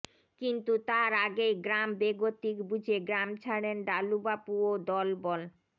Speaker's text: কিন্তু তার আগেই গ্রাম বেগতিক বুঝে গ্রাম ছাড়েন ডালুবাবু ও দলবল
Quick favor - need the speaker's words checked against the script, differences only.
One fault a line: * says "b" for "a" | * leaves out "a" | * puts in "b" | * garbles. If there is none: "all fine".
all fine